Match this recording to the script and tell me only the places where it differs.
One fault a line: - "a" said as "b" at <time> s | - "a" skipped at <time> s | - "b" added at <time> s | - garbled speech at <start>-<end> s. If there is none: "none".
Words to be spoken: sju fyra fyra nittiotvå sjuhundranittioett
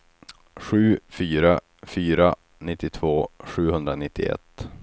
none